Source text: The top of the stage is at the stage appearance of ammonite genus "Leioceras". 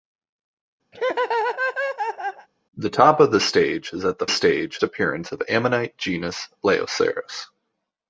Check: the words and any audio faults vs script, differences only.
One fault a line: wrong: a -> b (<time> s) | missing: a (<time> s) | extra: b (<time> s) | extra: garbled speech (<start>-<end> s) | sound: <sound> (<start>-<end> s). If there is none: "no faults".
sound: laugh (0.9-2.5 s)